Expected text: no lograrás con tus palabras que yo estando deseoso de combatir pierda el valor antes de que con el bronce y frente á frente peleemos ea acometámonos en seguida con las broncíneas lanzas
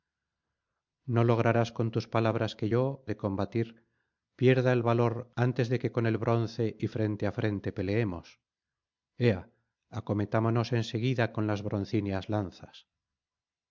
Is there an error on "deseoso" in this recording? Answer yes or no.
yes